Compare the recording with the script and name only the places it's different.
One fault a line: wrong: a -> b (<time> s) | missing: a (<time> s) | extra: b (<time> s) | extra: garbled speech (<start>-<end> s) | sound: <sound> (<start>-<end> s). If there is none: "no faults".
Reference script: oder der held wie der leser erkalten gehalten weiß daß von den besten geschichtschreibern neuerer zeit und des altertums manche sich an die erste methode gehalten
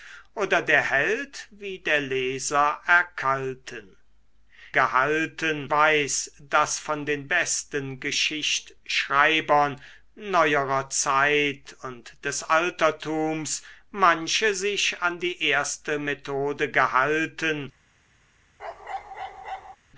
sound: bark (18.6-19.8 s)